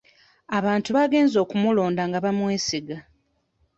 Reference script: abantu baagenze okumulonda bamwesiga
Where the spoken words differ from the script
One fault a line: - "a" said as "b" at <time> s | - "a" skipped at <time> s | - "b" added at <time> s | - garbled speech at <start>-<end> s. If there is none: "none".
- "nga" added at 2.1 s